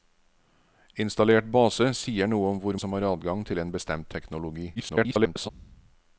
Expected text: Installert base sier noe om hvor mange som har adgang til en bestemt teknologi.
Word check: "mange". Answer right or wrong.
wrong